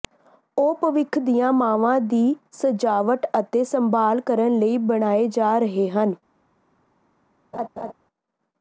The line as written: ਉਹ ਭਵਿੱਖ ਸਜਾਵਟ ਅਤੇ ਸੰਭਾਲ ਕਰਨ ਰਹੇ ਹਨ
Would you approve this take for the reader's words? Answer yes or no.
no